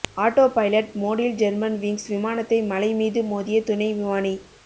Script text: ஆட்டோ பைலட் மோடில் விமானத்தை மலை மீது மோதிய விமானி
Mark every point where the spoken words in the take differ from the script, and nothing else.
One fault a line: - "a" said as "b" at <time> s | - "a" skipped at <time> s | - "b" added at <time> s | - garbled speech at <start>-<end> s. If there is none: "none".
- "ஜெர்மன்விங்ஸ்" added at 1.4 s
- "துணை" added at 3.6 s